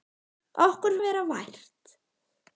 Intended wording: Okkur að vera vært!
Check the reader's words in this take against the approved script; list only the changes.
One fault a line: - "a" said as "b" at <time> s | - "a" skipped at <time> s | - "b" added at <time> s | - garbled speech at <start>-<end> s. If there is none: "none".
none